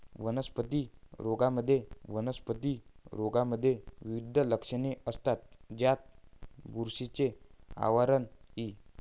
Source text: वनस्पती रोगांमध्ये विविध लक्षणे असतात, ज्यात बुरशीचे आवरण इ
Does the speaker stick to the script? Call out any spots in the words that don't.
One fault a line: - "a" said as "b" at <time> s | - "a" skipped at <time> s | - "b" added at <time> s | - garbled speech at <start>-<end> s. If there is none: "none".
- "वनस्पती रोगांमध्ये" added at 2.1 s